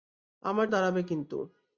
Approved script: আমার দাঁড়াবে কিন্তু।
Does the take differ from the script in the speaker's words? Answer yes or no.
no